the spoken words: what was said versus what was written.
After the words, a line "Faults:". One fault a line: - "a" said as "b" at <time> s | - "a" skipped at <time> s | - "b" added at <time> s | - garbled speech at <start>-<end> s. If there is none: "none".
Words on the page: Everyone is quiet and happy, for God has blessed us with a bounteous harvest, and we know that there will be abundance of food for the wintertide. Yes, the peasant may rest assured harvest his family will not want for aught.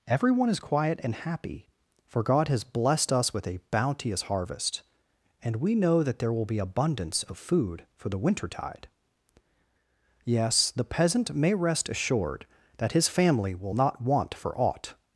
Everyone is quiet and happy, for God has blessed us with a bounteous harvest, and we know that there will be abundance of food for the wintertide. Yes, the peasant may rest assured that his family will not want for aught.
Faults:
- "harvest" said as "that" at 12.8 s